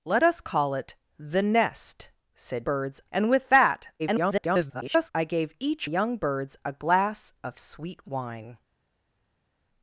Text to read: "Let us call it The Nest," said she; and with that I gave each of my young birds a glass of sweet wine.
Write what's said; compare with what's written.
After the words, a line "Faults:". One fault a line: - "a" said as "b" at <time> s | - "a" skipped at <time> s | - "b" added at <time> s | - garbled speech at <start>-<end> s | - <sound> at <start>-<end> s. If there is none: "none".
"Let us call it The Nest," said birds; and with that [garbled] I gave each young birds a glass of sweet wine.
Faults:
- "she" said as "birds" at 2.6 s
- garbled speech at 4.0-5.1 s
- "of my" skipped at 5.9 s